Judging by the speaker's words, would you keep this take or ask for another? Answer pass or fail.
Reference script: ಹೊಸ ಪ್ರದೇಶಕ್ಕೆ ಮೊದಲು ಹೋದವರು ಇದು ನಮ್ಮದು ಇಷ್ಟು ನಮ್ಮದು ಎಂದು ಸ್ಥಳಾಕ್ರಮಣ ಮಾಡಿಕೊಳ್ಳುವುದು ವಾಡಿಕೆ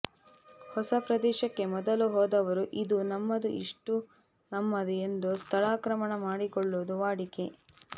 pass